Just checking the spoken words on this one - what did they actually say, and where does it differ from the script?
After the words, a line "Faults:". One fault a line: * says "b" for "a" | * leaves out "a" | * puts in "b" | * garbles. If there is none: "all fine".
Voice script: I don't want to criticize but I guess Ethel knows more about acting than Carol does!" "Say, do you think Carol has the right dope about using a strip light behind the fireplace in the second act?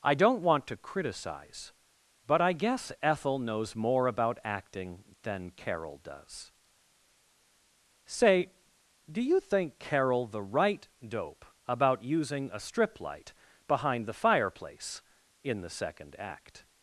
I don't want to criticize but I guess Ethel knows more about acting than Carol does!" "Say, do you think Carol the right dope about using a strip light behind the fireplace in the second act?
Faults:
* leaves out "has"